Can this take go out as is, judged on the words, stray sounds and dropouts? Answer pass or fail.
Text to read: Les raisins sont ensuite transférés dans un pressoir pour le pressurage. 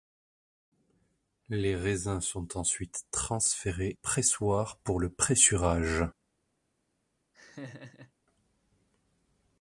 fail